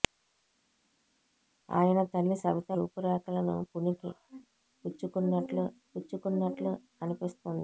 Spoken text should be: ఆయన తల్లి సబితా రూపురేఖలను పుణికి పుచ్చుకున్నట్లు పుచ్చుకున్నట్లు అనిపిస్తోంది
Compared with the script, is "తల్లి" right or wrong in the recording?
right